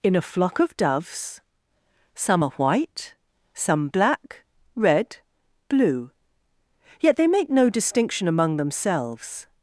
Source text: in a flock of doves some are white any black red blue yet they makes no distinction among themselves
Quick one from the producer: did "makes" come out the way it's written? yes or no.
no